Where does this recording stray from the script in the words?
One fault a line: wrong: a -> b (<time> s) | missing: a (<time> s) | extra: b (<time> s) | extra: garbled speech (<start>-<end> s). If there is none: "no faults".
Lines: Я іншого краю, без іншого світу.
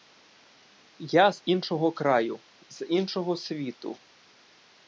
extra: з (1.3 s)
wrong: без -> з (2.7 s)